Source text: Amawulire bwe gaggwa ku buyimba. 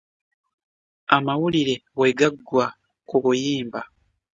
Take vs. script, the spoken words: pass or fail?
pass